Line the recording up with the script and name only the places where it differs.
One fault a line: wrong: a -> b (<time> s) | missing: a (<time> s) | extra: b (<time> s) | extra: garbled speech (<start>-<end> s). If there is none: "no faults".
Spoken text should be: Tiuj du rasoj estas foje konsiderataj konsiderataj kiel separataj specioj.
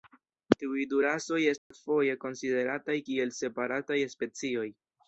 missing: konsiderataj (3.0 s)